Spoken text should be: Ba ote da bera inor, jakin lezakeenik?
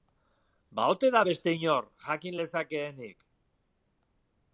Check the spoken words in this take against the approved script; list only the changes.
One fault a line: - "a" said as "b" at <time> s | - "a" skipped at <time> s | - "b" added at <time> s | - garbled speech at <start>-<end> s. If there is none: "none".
- "bera" said as "beste" at 1.3 s